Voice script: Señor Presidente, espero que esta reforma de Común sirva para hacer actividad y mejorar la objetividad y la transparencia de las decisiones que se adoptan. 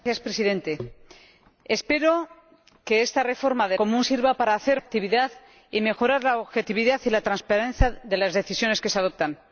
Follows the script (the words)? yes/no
yes